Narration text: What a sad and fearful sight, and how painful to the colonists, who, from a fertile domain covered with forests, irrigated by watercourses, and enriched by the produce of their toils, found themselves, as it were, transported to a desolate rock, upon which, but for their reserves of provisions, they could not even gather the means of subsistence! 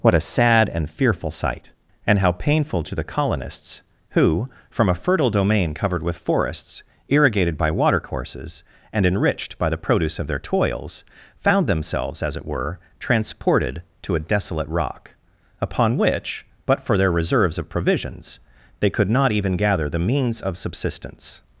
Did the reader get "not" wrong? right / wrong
right